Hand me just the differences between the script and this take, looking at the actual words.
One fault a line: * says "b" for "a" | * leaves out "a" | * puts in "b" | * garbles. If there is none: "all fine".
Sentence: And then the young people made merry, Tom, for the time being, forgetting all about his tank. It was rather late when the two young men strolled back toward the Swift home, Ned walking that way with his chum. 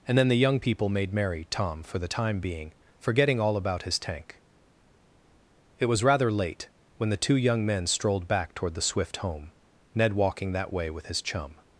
all fine